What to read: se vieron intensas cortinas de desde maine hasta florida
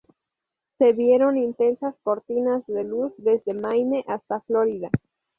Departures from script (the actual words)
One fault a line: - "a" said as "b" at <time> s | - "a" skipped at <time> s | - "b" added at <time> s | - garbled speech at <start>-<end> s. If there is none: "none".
- "luz" added at 2.8 s